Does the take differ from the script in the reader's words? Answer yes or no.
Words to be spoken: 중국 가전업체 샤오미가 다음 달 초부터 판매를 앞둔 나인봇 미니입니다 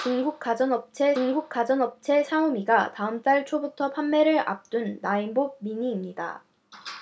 yes